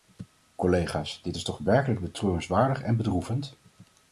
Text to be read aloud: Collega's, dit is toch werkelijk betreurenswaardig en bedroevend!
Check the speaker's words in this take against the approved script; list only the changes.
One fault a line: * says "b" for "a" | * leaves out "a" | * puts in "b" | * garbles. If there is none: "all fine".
all fine